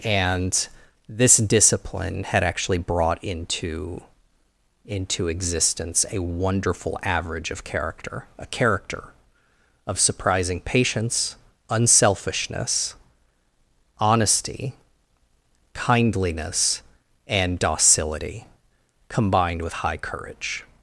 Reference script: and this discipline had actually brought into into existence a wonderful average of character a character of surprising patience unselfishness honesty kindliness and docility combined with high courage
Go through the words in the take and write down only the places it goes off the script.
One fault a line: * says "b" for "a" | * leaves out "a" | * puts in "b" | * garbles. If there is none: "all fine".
all fine